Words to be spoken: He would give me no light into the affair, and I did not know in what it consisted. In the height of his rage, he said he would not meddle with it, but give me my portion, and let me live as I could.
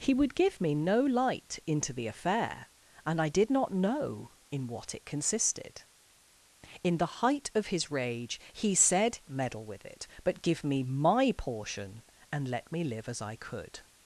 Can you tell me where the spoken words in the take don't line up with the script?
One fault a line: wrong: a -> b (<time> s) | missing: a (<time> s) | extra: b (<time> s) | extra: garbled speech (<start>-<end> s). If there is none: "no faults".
missing: he would not (9.2 s)